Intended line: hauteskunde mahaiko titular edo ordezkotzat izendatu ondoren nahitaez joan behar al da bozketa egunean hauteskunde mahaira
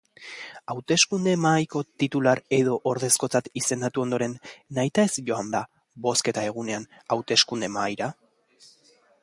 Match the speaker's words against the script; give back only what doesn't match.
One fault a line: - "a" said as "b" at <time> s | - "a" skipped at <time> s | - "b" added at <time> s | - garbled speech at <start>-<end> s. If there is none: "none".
- "behar al" skipped at 5.5 s